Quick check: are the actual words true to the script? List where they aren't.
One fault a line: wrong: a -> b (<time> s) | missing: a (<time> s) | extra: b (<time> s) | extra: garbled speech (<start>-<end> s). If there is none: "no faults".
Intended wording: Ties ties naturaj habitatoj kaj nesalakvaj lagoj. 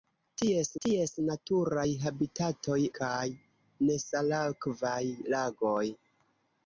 no faults